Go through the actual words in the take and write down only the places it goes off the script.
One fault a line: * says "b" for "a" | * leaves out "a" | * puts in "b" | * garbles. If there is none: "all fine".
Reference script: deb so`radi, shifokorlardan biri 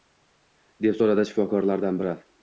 all fine